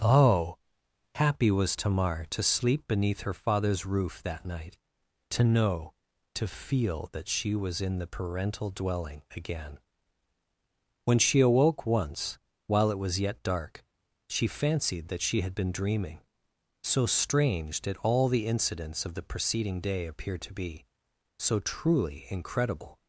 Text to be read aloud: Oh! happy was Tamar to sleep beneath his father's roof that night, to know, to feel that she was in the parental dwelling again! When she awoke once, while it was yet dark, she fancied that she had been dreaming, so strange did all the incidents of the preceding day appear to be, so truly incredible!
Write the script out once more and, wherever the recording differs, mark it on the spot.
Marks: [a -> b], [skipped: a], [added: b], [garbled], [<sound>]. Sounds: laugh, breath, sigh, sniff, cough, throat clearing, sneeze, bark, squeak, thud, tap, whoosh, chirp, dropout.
Oh! happy was Tamar to sleep beneath [his -> her] father's roof that night, to know, to feel that she was in the parental dwelling again! When she awoke once, while it was yet dark, she fancied that she had been dreaming, so strange did all the incidents of the preceding day appear to be, so truly incredible!